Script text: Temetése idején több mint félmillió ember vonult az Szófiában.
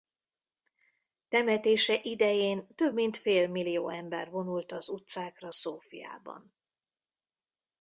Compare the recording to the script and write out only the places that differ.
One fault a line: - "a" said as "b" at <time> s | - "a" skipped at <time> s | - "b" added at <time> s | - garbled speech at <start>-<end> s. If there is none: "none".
- "utcákra" added at 4.9 s